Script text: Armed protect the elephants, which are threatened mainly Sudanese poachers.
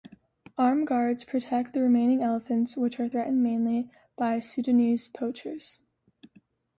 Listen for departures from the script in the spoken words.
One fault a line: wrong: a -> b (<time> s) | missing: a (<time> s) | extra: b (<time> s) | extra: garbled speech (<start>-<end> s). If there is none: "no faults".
extra: guards (0.9 s)
extra: remaining (1.8 s)
extra: by (4.1 s)